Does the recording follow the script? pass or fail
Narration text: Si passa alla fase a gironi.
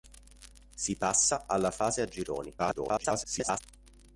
fail